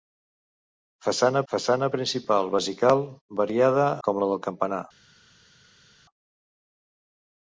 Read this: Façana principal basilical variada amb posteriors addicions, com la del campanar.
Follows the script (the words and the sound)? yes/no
no